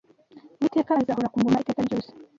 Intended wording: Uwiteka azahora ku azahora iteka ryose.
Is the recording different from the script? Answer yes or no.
yes